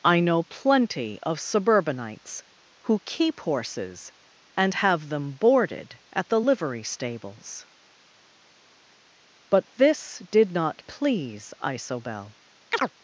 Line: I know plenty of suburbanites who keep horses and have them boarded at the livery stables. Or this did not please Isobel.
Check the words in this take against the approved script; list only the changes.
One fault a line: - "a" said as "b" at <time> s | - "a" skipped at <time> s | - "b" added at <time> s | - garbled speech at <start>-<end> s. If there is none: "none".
- "Or" said as "But" at 9.5 s